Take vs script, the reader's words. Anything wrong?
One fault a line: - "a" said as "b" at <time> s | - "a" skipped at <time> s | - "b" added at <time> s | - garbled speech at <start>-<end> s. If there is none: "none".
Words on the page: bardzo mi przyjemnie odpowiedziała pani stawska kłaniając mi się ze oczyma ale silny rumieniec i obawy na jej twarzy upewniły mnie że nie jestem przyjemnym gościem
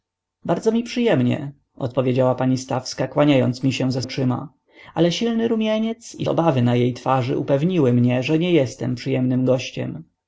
none